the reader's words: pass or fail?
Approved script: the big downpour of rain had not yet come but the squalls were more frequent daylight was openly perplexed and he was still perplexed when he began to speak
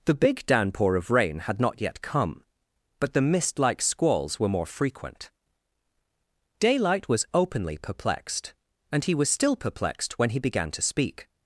fail